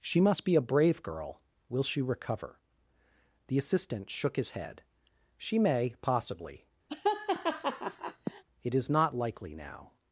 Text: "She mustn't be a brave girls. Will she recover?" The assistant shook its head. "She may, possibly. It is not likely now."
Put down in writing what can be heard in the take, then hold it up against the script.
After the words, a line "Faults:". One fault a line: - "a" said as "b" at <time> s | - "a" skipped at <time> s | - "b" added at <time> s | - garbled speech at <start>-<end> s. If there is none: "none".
"She must be a brave girl. Will she recover?" The assistant shook his head. "She may, possibly. It is not likely now."
Faults:
- "mustn't" said as "must" at 0.2 s
- "girls" said as "girl" at 1.0 s
- "its" said as "his" at 4.3 s